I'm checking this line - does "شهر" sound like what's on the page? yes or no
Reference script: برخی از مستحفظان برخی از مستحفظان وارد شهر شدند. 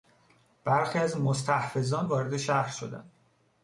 yes